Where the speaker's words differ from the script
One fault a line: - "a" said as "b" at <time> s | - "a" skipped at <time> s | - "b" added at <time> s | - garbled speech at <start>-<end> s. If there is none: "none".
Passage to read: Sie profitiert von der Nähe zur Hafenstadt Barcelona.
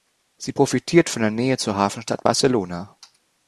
none